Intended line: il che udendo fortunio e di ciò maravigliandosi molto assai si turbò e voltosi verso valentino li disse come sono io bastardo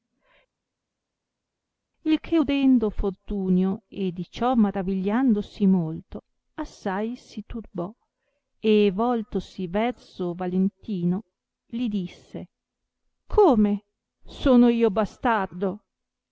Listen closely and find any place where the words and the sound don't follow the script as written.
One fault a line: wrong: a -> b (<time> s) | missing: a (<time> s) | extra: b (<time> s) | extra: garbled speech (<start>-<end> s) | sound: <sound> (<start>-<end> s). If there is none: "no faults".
no faults